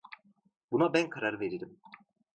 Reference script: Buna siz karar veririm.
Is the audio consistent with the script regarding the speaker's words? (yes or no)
no